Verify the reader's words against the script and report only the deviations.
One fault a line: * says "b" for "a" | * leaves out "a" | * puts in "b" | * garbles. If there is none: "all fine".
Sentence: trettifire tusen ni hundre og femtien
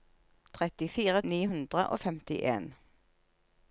* leaves out "tusen"